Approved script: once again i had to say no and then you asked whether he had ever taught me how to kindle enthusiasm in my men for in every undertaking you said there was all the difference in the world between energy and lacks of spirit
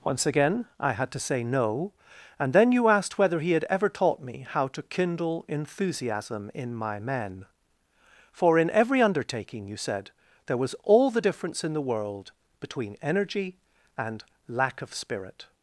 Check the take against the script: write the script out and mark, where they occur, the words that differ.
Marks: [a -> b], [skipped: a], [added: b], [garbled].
once again i had to say no and then you asked whether he had ever taught me how to kindle enthusiasm in my men for in every undertaking you said there was all the difference in the world between energy and [lacks -> lack] of spirit